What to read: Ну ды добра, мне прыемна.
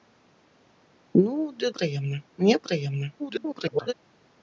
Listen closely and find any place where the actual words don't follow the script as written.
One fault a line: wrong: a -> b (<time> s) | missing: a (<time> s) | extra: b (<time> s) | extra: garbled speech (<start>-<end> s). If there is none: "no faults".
wrong: добра -> прыемна (1.7 s)
extra: garbled speech (3.2-3.9 s)